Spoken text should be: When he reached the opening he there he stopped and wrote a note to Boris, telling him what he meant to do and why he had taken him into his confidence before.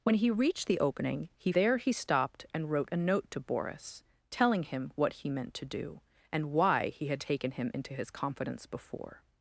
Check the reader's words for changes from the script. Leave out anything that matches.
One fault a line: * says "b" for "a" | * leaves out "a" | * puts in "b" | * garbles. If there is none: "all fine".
all fine